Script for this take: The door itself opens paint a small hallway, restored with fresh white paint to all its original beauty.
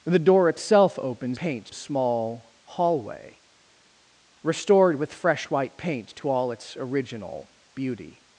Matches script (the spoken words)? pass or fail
pass